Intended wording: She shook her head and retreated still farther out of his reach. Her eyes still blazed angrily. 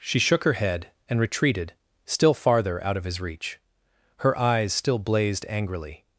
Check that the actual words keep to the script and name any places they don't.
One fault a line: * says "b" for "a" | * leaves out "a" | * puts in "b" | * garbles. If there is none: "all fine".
all fine